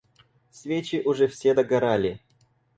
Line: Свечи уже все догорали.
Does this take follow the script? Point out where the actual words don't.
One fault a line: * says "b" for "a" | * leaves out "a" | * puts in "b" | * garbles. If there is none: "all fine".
all fine